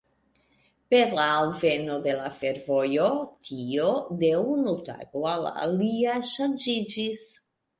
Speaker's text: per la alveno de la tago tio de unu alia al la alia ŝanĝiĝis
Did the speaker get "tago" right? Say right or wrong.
wrong